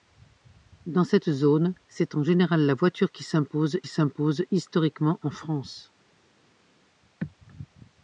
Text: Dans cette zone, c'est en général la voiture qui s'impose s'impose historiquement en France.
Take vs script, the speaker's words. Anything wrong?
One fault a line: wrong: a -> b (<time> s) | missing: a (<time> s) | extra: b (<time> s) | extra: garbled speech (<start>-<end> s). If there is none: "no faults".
no faults